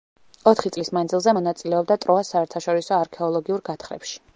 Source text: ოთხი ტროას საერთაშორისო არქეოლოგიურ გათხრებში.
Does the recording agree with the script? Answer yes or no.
no